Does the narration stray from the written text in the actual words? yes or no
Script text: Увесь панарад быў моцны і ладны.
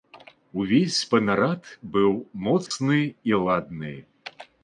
no